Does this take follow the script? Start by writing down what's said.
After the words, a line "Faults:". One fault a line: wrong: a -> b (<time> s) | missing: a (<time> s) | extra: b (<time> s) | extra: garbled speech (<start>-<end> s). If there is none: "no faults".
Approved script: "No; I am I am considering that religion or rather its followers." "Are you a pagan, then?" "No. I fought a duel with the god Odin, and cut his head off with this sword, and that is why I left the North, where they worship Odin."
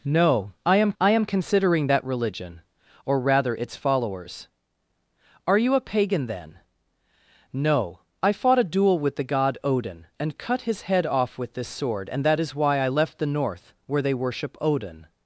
"No; I am I am considering that religion or rather its followers." "Are you a pagan, then?" "No. I fought a duel with the god Odin, and cut his head off with this sword, and that is why I left the North, where they worship Odin."
Faults:
no faults